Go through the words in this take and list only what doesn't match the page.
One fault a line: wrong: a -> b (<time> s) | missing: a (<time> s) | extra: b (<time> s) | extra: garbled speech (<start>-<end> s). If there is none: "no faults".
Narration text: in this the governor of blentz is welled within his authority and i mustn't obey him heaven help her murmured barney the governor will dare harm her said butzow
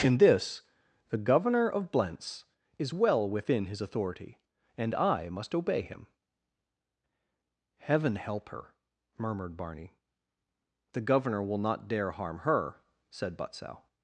wrong: welled -> well (2.9 s)
wrong: mustn't -> must (5.3 s)
extra: not (11.6 s)